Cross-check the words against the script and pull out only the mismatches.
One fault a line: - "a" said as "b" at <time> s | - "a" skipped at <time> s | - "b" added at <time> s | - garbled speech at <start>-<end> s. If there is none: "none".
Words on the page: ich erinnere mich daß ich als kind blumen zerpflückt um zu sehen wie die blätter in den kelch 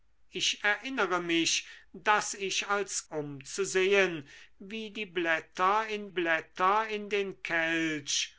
- "kind blumen zerpflückt" skipped at 3.0 s
- "blätter in" added at 6.1 s